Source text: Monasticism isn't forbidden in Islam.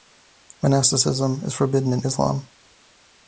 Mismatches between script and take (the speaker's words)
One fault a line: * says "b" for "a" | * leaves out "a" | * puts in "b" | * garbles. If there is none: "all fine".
* says "is" for "isn't"